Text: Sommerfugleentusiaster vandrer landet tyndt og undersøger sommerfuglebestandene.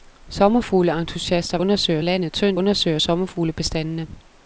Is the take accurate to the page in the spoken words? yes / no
no